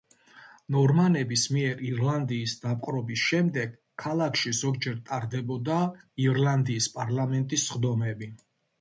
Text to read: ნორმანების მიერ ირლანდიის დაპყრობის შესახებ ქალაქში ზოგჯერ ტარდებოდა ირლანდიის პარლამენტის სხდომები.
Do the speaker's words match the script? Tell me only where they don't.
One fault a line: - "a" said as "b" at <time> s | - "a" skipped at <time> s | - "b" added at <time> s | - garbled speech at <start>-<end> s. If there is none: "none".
- "შესახებ" said as "შემდეგ" at 3.3 s